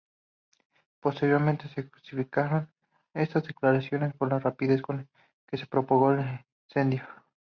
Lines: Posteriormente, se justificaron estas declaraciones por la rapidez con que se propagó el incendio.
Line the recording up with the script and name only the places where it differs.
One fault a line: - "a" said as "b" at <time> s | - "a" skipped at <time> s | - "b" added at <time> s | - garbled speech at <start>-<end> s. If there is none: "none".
none